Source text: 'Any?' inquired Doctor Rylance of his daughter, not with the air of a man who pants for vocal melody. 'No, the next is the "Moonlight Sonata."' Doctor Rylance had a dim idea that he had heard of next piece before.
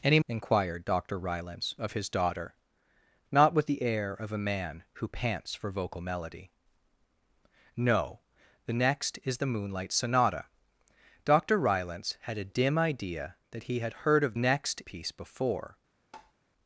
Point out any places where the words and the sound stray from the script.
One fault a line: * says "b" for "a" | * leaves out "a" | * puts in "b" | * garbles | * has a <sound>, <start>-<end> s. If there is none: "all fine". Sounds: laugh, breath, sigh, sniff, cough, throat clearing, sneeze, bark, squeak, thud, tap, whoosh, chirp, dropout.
* has a tap, 16.1-16.3 s